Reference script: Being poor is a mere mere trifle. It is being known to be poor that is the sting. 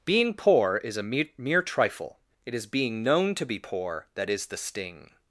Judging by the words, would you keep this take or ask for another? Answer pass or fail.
pass